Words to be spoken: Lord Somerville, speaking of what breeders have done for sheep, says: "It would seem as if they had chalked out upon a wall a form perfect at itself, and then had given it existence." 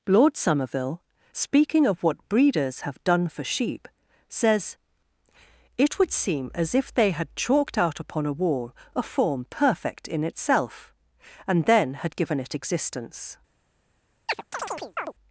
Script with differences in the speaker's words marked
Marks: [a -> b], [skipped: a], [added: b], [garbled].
Lord Somerville, speaking of what breeders have done for sheep, says: "It would seem as if they had chalked out upon a wall a form perfect [at -> in] itself, and then had given it existence."